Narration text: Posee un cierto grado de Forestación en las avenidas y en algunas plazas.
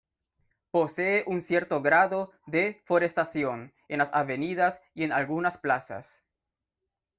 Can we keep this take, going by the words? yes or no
yes